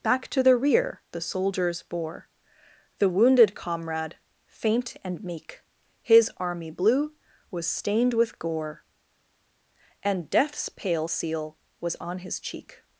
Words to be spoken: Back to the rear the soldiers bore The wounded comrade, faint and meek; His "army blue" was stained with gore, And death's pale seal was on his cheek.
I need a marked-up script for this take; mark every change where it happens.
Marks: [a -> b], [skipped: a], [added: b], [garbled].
Back to the rear the soldiers bore The wounded comrade, faint and meek; His "army blue" was stained with gore, And death's pale seal was on his cheek.